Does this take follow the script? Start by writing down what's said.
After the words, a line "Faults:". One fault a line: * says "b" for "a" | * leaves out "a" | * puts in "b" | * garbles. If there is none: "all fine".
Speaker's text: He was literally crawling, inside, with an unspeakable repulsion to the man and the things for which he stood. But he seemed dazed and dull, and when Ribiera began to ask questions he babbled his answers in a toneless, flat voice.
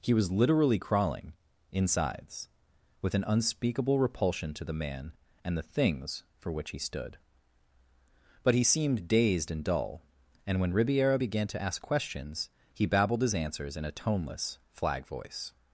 He was literally crawling, insides, with an unspeakable repulsion to the man and the things for which he stood. But he seemed dazed and dull, and when Ribiera began to ask questions he babbled his answers in a toneless, flag voice.
Faults:
* says "insides" for "inside"
* says "flag" for "flat"